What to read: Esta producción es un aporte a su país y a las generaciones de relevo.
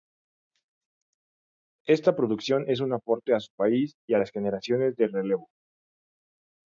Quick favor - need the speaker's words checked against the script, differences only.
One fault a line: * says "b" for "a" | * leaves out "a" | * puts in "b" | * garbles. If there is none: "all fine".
all fine